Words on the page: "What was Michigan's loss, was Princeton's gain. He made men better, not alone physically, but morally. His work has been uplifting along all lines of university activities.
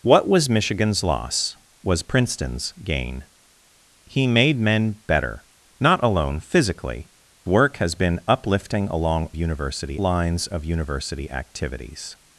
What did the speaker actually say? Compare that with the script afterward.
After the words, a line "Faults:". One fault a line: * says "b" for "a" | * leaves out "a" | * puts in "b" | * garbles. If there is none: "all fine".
"What was Michigan's loss, was Princeton's gain. He made men better, not alone physically, work has been uplifting along university lines of university activities.
Faults:
* leaves out "but morally His"
* says "university" for "all"